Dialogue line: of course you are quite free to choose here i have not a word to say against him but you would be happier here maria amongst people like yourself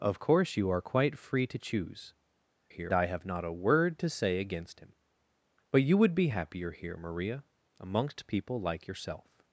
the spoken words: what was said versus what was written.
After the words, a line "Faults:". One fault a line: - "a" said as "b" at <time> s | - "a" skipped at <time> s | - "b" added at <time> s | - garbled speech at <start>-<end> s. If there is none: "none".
of course you are quite free to choose here i have not a word to say against him but you would be happier here maria amongst people like yourself
Faults:
none